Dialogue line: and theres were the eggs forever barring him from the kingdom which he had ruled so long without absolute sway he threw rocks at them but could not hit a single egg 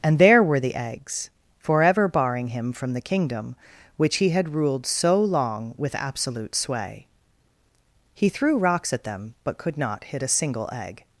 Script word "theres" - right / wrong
wrong